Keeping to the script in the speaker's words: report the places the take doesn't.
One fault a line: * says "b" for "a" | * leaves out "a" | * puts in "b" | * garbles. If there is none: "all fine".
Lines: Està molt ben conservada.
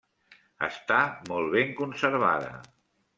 all fine